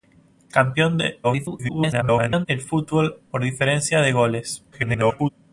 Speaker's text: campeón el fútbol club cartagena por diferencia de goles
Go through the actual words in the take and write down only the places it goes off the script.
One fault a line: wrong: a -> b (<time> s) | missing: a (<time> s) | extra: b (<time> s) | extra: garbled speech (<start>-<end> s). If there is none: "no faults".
extra: garbled speech (1.2-2.5 s)
missing: club cartagena (3.2 s)
extra: garbled speech (4.7-5.3 s)